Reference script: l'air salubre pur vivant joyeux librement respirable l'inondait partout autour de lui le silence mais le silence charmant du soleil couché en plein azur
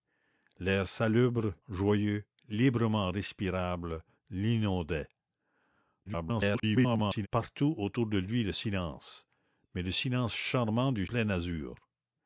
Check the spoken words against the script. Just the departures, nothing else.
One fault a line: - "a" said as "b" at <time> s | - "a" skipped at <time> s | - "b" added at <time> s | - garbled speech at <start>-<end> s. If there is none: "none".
- "pur vivant" skipped at 1.5 s
- garbled speech at 6.1-7.3 s
- "soleil couché en" skipped at 11.1 s